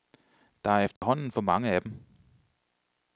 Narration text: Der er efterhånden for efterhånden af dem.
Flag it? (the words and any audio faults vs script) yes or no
yes